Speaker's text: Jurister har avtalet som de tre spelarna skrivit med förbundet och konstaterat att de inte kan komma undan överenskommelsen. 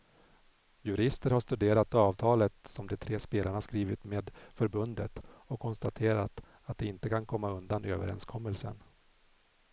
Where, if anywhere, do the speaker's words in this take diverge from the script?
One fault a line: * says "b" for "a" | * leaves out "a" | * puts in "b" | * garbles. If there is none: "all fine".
* puts in "studerat"